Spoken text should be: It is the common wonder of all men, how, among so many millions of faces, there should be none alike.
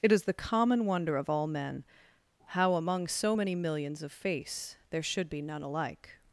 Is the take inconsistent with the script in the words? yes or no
yes